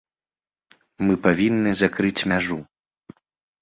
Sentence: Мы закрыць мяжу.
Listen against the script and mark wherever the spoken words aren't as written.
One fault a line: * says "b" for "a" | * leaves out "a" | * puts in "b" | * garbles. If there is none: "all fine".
* puts in "павінны"